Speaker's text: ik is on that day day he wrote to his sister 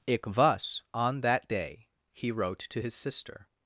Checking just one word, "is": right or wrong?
wrong